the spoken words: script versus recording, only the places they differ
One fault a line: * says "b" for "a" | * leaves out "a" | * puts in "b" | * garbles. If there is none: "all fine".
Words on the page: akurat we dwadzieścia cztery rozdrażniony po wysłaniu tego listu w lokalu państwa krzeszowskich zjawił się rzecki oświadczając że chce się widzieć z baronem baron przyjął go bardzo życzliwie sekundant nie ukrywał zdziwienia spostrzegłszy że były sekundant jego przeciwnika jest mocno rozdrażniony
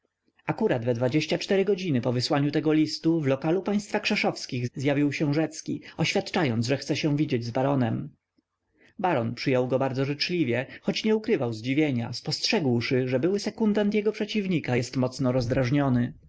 * says "godziny" for "rozdrażniony"
* says "choć" for "sekundant"